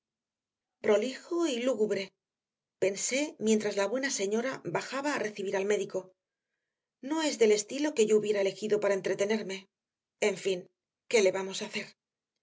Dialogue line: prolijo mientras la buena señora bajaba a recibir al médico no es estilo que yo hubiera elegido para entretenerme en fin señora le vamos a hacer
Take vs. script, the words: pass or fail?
fail